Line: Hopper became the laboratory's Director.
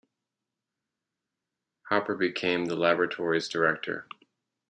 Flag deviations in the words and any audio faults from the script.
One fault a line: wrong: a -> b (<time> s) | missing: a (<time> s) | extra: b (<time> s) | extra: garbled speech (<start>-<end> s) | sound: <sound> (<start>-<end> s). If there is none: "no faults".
no faults